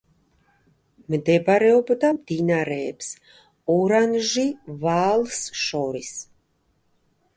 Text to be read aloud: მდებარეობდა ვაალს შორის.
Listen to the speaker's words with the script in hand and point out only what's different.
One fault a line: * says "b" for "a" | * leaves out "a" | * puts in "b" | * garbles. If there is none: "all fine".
* puts in "მდინარეებს ორანჟი"